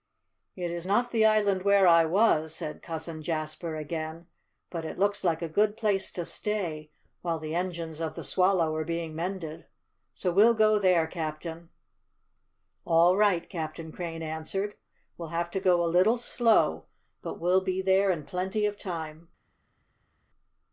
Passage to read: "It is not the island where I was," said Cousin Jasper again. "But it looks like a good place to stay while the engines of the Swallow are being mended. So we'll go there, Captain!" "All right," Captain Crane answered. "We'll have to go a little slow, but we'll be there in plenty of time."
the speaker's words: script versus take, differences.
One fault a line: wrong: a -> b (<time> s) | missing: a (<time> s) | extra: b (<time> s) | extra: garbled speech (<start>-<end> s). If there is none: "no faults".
no faults